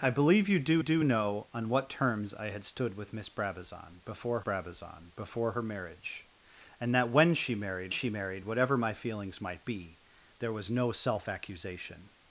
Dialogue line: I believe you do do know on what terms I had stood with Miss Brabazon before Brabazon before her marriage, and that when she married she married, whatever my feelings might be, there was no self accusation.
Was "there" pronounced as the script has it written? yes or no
yes